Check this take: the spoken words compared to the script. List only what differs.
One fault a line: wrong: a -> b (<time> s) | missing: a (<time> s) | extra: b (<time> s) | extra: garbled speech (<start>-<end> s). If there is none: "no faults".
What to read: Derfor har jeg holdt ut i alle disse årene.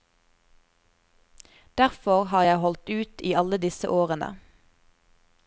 no faults